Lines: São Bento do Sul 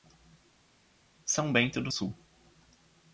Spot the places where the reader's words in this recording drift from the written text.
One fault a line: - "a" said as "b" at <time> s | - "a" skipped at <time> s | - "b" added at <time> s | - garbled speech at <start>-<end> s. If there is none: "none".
none